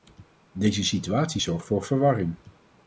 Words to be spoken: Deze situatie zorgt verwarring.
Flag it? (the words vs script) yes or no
yes